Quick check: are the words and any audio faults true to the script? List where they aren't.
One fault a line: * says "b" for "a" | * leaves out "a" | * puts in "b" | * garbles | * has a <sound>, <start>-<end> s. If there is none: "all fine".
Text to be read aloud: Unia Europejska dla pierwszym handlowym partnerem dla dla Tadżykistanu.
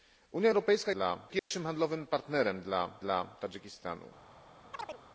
* has a dropout, 1.4-1.5 s
* has a chirp, 4.7-5.0 s